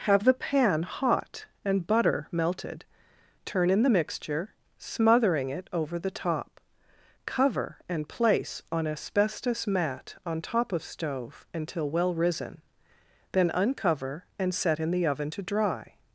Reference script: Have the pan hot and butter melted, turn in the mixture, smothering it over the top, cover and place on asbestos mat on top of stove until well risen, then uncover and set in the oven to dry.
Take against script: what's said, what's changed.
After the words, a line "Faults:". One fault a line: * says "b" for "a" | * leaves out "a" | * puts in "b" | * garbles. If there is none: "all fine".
Have the pan hot and butter melted, turn in the mixture, smothering it over the top, cover and place on asbestos mat on top of stove until well risen, then uncover and set in the oven to dry.
Faults:
all fine